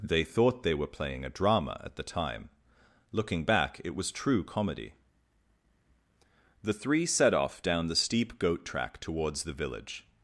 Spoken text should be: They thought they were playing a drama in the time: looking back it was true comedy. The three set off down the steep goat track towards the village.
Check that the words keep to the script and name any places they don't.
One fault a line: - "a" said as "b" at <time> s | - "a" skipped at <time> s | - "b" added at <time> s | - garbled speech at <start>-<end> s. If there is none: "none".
- "in" said as "at" at 1.8 s